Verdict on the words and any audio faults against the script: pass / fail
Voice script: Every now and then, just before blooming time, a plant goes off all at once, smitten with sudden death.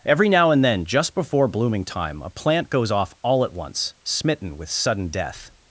pass